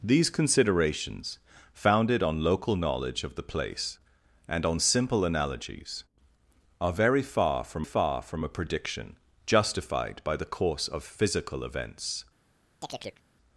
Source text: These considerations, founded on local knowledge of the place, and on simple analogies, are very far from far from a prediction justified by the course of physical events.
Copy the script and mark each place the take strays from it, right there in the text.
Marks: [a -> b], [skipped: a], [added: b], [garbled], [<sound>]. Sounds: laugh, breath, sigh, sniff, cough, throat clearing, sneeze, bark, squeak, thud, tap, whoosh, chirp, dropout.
These considerations, founded on local knowledge of the place, and on simple analogies, are very far from far from a prediction justified by the course of physical events. [chirp]